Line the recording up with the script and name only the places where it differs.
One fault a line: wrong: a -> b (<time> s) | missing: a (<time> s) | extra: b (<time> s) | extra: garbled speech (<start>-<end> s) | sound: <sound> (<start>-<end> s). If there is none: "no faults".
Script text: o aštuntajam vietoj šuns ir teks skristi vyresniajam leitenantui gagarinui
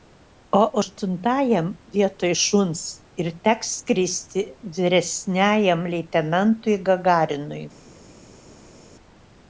no faults